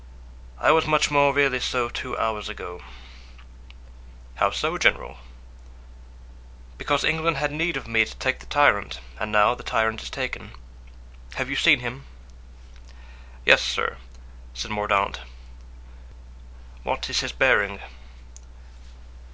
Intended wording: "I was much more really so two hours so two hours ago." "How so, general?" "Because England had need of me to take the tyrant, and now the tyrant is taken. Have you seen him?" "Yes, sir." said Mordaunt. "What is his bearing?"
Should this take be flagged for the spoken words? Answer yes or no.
yes